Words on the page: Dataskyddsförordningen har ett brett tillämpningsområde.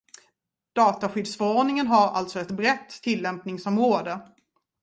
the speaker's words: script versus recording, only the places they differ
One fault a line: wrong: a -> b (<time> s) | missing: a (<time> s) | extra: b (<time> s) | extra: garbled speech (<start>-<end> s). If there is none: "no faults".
extra: alltså (2.1 s)